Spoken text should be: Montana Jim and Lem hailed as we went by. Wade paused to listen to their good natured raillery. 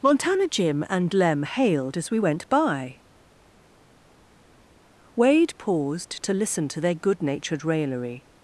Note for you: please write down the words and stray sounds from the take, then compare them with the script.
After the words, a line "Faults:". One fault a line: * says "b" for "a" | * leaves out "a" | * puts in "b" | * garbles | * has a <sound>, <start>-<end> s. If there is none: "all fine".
Montana Jim and Lem hailed as we went by. Wade paused to listen to their good natured raillery.
Faults:
all fine